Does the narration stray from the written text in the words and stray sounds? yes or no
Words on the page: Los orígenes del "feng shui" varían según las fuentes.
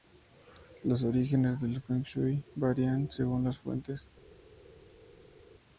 no